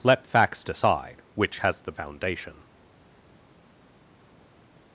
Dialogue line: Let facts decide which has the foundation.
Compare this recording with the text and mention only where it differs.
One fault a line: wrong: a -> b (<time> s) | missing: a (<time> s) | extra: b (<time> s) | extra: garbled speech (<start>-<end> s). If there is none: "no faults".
no faults